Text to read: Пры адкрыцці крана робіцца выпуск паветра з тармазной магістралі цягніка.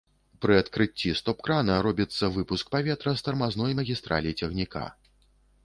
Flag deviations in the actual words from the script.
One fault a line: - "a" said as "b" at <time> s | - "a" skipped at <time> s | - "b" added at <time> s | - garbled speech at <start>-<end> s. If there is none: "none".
- "стоп" added at 1.2 s